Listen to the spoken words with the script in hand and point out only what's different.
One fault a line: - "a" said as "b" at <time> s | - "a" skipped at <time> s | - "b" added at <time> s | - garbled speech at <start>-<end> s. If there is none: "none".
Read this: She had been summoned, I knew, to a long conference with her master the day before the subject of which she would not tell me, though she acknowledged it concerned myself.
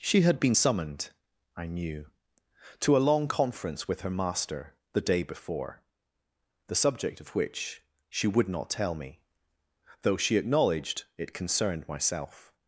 none